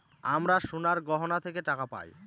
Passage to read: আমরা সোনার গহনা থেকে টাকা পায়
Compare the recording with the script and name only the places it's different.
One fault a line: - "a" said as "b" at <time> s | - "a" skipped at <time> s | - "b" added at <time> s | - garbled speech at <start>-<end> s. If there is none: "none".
none